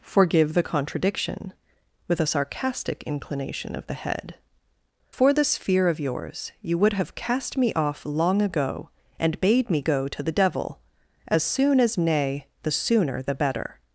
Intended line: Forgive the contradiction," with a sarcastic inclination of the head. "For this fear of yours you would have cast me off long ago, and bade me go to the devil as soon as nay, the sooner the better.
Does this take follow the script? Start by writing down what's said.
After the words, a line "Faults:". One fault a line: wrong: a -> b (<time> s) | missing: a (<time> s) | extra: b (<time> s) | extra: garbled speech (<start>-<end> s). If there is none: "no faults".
Forgive the contradiction," with a sarcastic inclination of the head. "For this fear of yours you would have cast me off long ago, and bade me go to the devil as soon as nay, the sooner the better.
Faults:
no faults